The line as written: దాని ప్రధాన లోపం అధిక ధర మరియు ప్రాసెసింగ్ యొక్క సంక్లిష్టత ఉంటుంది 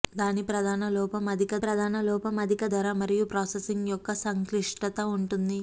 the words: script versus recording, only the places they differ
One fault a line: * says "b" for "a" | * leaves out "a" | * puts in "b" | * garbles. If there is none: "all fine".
* puts in "ప్రధాన లోపం అధిక"